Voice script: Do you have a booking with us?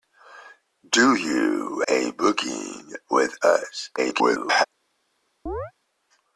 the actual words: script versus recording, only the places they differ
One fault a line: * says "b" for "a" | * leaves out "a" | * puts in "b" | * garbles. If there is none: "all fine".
* leaves out "have"
* garbles